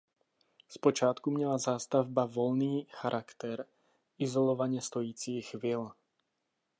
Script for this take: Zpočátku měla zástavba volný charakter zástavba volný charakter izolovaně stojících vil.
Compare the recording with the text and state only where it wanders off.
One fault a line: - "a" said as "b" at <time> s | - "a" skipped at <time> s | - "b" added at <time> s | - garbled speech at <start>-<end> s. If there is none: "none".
- "zástavba volný charakter" skipped at 3.6 s